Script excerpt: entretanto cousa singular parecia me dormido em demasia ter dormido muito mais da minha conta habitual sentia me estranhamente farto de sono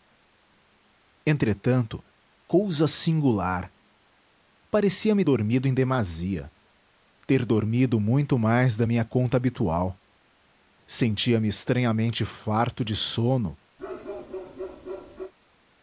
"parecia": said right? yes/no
yes